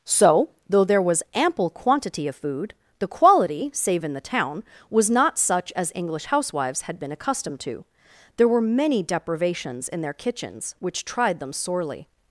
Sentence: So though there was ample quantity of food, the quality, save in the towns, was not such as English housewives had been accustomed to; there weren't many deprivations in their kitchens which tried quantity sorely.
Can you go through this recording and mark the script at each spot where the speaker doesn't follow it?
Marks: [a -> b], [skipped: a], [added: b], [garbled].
So though there was ample quantity of food, the quality, save in the [towns, -> town] was not such as English housewives had been accustomed to; there [weren't -> were] many deprivations in their kitchens which tried [quantity -> them] sorely.